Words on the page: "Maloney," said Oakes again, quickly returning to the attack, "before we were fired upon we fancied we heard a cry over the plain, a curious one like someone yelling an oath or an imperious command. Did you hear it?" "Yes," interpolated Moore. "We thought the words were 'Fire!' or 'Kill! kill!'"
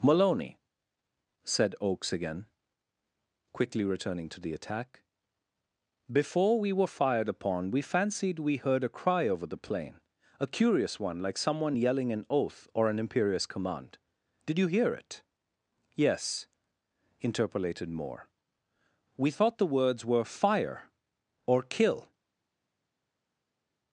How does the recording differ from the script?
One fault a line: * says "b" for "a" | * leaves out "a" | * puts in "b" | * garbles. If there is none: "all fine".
* leaves out "kill"